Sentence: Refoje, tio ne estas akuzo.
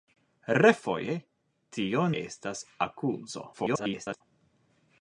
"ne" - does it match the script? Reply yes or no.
no